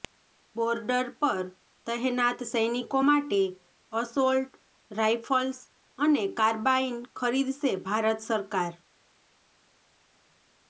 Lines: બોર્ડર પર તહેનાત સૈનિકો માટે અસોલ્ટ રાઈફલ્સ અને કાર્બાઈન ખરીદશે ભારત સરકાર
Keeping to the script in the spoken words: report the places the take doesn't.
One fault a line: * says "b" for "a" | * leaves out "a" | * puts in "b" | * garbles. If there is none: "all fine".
all fine